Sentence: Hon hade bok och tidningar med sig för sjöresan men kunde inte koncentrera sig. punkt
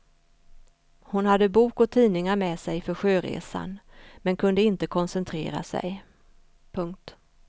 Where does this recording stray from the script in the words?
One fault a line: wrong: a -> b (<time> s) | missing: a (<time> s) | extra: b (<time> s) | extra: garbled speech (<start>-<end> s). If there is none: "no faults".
no faults